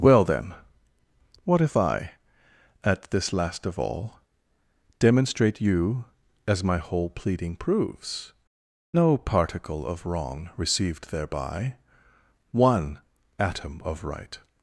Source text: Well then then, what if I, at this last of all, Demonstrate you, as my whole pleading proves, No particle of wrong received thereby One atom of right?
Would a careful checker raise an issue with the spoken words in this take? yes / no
yes